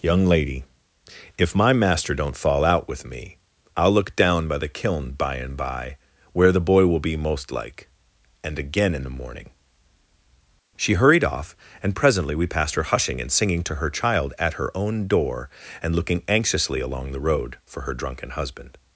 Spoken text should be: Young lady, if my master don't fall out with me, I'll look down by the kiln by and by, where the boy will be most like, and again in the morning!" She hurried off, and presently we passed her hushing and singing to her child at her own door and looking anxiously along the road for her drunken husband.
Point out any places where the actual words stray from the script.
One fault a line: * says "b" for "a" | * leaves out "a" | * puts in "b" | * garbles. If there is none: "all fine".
all fine